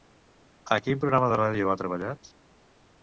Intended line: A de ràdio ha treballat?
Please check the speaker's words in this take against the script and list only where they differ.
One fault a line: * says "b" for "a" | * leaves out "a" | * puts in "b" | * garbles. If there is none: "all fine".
* puts in "quin programa"